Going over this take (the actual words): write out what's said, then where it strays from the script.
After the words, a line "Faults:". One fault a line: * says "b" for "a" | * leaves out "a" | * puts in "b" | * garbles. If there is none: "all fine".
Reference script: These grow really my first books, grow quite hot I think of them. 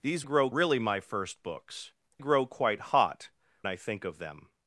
These grow really my first books, grow quite hot I think of them.
Faults:
all fine